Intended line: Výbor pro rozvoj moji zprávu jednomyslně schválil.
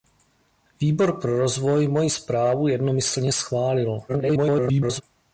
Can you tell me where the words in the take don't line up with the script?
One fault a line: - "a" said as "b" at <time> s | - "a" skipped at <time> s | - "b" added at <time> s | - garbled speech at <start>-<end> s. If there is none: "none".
- garbled speech at 4.1-5.0 s